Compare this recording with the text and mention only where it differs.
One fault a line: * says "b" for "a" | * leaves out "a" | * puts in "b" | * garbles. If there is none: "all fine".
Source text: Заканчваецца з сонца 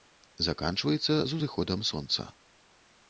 * puts in "узыходам"